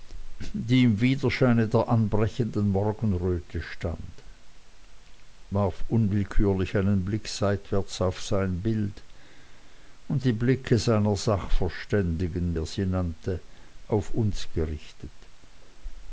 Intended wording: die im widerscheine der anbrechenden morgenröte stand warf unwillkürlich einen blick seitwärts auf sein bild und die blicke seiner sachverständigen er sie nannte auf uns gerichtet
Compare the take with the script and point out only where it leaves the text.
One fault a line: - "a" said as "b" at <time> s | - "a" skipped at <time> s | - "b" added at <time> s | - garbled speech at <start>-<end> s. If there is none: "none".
none